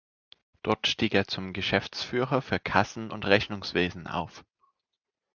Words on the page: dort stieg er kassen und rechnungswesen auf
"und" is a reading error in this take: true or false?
false